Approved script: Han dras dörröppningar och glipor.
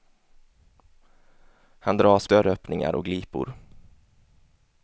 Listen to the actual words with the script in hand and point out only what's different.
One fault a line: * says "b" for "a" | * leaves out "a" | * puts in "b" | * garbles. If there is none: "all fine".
all fine